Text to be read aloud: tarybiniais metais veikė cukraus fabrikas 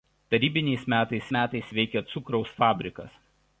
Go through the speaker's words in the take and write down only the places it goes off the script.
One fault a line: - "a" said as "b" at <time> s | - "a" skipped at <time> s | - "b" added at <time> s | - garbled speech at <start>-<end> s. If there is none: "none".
- "metais" added at 1.4 s